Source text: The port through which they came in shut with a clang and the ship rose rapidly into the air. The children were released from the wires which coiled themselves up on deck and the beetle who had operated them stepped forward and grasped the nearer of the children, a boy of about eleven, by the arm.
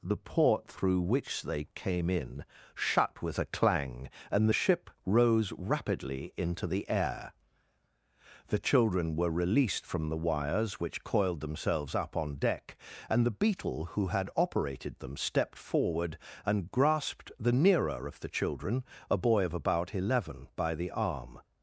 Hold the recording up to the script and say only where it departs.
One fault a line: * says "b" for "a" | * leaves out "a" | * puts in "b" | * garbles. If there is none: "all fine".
all fine